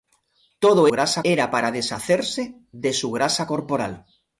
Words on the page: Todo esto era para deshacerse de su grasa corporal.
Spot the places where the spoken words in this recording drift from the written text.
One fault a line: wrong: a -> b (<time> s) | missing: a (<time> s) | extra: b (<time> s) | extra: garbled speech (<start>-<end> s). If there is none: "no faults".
wrong: esto -> grasa (0.9 s)